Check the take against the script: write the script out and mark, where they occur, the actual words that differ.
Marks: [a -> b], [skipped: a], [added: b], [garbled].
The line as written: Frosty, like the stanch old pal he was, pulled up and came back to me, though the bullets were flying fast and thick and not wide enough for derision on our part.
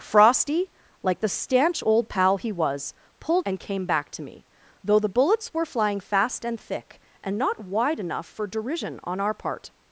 Frosty, like the stanch old pal he was, pulled [skipped: up] and came back to me, though the bullets were flying fast and thick and not wide enough for derision on our part.